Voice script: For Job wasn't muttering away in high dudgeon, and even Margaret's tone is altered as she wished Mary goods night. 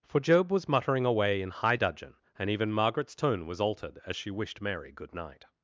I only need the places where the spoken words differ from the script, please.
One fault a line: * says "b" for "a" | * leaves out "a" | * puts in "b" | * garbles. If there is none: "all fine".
* says "was" for "wasn't"
* says "was" for "is"
* says "good" for "goods"